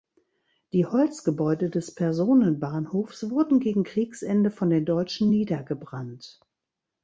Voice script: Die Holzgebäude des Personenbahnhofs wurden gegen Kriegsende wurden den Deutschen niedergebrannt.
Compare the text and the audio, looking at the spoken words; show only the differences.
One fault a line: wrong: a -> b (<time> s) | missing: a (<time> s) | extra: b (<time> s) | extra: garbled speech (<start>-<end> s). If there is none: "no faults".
wrong: wurden -> von (4.5 s)